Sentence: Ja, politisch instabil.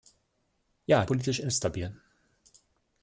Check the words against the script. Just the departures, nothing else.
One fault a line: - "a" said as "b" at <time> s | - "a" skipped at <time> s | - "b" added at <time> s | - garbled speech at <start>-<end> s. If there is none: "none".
none